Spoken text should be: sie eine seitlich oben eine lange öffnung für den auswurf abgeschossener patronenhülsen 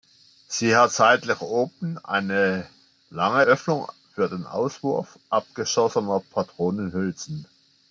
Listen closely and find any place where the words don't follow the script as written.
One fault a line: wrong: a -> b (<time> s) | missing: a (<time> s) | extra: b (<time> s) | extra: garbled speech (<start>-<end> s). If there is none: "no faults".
wrong: eine -> hat (0.8 s)